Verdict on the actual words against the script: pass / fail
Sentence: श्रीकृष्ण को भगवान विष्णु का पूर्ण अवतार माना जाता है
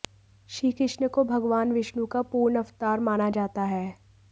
pass